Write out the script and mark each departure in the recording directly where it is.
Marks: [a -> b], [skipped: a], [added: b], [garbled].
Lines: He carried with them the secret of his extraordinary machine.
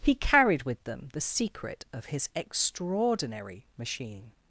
He carried with them the secret of his extraordinary machine.